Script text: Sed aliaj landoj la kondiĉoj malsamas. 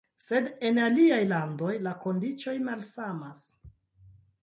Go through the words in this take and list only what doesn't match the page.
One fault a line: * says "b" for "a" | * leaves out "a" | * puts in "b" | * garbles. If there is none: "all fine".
* puts in "en"